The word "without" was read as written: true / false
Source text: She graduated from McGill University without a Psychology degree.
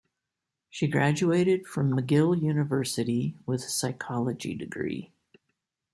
false